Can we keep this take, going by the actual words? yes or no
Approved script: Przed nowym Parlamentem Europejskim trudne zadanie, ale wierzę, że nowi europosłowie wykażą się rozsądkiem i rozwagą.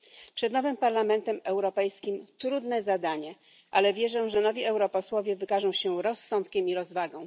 yes